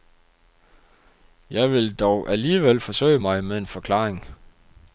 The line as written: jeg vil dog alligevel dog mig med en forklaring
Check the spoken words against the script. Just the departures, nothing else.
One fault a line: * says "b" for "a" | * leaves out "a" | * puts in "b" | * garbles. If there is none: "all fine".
* says "forsøge" for "dog"